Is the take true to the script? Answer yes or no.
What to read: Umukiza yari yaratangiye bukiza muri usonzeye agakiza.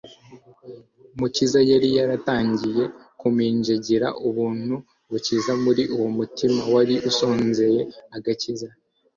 no